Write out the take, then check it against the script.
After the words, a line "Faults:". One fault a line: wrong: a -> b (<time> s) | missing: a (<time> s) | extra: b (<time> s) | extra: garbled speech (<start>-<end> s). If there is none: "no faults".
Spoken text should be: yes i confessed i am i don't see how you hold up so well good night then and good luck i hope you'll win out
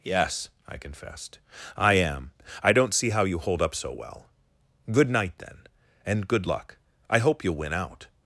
yes i confessed i am i don't see how you hold up so well good night then and good luck i hope you'll win out
Faults:
no faults